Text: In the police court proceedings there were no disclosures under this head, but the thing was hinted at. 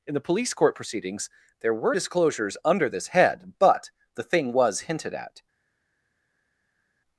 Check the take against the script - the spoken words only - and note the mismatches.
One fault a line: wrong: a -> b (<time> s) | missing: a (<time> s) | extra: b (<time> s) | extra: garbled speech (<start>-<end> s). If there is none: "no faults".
missing: no (1.9 s)